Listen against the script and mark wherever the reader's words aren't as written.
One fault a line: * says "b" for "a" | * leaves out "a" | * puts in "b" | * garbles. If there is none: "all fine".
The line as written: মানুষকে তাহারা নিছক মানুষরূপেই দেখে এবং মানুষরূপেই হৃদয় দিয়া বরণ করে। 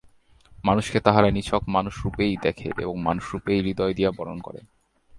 all fine